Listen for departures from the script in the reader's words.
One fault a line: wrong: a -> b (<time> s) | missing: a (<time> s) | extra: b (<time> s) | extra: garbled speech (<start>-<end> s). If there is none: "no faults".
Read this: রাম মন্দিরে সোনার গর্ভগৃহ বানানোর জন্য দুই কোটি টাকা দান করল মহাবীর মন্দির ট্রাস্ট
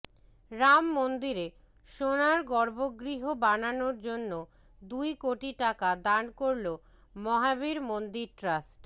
no faults